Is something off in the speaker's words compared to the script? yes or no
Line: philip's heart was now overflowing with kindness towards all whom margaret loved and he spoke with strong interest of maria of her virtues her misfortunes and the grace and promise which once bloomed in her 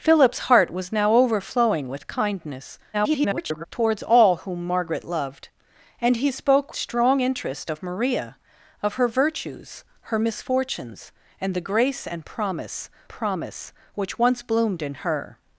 yes